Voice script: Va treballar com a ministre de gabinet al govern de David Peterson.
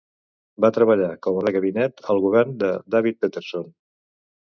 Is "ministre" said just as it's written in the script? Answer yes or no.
no